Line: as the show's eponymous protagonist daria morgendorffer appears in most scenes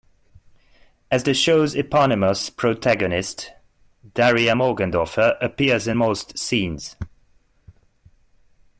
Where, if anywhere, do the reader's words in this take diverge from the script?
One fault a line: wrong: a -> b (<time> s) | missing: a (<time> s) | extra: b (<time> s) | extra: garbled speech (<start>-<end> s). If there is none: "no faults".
no faults